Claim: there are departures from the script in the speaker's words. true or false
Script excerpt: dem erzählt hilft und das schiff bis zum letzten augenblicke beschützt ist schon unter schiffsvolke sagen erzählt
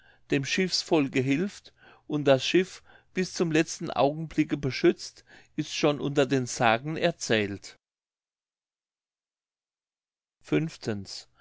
true